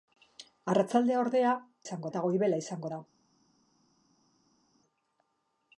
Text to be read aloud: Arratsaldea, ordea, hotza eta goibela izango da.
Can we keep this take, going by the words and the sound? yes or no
no